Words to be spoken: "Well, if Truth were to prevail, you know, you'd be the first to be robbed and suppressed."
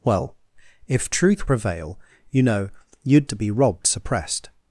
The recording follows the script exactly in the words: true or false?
false